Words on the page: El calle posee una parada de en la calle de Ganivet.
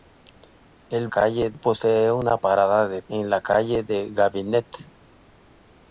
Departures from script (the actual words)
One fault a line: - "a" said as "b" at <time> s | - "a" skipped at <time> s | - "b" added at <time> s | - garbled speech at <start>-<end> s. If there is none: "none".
none